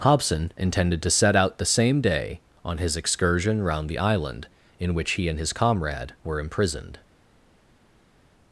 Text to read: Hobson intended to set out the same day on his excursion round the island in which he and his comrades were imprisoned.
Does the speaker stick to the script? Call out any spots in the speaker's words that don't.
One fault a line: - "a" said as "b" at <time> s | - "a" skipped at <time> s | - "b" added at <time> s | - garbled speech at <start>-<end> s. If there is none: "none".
- "comrades" said as "comrade" at 5.5 s